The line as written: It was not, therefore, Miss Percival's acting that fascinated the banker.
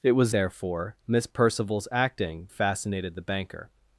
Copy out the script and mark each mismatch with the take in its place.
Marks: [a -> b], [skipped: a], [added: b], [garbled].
It was [skipped: not,] therefore, Miss Percival's acting [skipped: that] fascinated the banker.